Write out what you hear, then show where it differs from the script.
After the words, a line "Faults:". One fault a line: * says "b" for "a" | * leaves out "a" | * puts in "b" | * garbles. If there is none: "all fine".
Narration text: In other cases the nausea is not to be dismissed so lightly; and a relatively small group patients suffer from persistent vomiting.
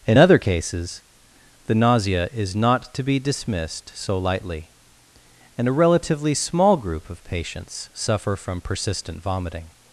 In other cases the nausea is not to be dismissed so lightly; and a relatively small group of patients suffer from persistent vomiting.
Faults:
* puts in "of"